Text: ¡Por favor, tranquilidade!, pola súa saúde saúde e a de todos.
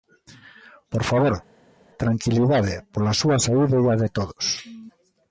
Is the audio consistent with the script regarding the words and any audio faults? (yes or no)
no